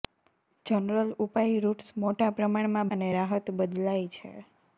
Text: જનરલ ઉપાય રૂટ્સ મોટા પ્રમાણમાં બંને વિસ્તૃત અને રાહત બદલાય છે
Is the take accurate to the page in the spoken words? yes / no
no